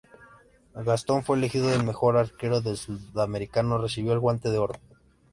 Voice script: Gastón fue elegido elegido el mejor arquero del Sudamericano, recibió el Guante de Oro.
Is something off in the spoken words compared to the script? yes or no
yes